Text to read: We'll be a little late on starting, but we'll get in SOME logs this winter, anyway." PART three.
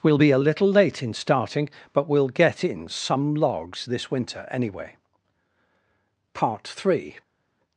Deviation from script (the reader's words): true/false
true